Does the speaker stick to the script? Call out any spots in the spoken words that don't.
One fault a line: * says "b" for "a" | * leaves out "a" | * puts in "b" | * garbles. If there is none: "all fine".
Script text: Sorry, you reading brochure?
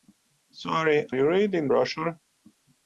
all fine